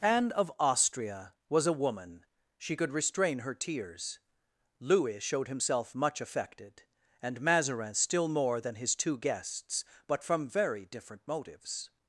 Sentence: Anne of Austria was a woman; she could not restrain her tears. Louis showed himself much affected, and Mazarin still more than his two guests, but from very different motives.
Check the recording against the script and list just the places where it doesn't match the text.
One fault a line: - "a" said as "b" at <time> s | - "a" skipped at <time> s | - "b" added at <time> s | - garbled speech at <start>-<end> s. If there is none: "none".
- "not" skipped at 2.9 s